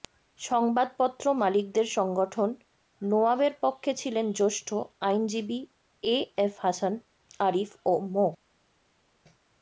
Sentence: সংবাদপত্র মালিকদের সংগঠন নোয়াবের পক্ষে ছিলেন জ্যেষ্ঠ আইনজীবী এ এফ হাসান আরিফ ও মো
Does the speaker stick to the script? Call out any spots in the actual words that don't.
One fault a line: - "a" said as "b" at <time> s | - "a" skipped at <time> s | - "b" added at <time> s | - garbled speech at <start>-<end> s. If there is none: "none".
none